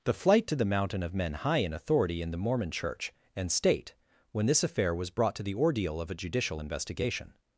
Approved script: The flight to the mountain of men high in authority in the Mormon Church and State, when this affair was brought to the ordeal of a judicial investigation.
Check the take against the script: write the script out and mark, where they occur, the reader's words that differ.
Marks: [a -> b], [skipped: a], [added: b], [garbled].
The flight to the mountain of men high in authority in the Mormon Church and State, when this affair was brought to the ordeal of a judicial investigation.